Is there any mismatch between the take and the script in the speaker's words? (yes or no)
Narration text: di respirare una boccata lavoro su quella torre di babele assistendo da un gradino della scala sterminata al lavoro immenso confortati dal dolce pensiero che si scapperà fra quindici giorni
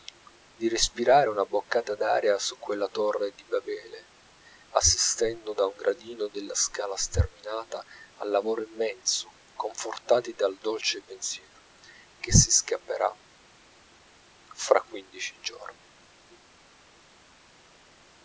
yes